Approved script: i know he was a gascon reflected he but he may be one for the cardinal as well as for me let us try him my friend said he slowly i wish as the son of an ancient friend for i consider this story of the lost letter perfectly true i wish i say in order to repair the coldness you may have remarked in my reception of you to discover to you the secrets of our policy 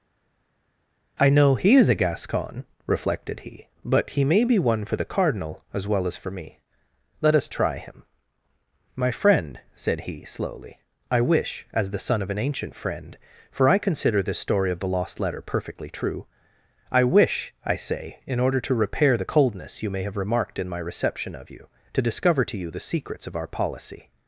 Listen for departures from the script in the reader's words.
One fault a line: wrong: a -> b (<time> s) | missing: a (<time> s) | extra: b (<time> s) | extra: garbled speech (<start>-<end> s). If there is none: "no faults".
wrong: was -> is (1.7 s)